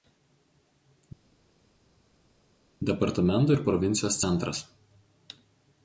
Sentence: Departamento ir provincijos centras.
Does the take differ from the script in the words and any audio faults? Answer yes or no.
no